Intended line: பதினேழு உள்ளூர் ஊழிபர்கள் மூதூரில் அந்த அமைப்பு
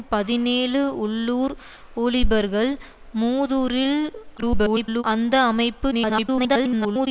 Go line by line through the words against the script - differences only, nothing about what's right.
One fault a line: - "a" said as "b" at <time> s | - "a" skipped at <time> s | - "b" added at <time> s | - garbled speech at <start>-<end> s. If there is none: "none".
- garbled speech at 4.4-5.0 s
- garbled speech at 5.9-7.1 s